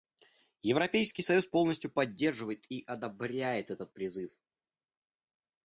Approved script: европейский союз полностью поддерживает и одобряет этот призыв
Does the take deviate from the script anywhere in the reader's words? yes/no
no